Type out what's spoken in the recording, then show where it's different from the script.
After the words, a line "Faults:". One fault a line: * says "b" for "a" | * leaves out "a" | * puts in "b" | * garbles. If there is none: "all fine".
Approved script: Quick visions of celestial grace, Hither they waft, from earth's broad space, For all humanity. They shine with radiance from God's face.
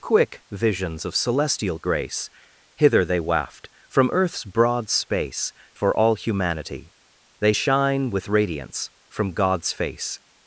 Quick visions of celestial grace, Hither they waft, from earth's broad space, For all humanity. They shine with radiance from God's face.
Faults:
all fine